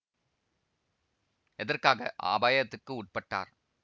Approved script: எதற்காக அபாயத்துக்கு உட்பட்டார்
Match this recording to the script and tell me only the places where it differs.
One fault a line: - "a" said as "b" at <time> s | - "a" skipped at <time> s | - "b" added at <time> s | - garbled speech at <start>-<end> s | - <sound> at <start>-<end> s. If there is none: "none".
none